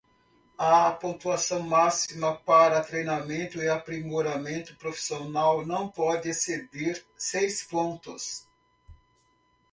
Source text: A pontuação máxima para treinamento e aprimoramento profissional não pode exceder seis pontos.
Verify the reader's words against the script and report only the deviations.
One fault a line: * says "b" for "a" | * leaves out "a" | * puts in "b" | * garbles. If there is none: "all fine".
all fine